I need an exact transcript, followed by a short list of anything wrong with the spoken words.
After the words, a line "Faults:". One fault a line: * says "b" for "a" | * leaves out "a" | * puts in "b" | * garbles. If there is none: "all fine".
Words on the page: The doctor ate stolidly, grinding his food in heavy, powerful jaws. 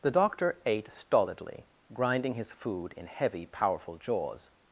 The doctor ate stolidly, grinding his food in heavy, powerful jaws.
Faults:
all fine